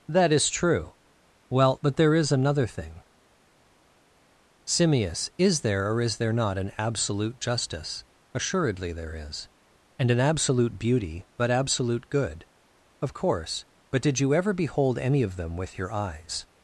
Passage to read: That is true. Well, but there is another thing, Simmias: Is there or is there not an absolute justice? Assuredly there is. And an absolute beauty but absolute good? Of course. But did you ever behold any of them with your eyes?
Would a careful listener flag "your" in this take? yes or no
no